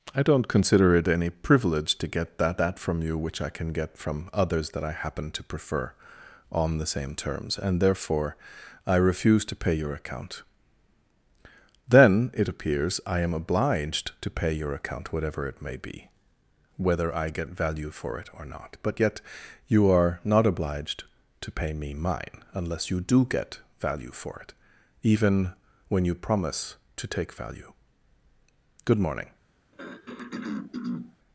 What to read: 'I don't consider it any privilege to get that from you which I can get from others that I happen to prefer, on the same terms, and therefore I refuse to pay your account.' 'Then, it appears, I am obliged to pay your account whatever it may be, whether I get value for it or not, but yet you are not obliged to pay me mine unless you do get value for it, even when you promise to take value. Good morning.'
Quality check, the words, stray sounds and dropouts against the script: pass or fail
fail